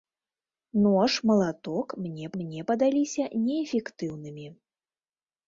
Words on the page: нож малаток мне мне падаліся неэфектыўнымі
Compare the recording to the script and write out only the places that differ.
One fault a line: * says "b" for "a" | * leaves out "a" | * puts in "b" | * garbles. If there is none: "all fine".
all fine